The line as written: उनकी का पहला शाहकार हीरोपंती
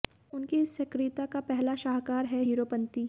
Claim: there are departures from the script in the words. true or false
true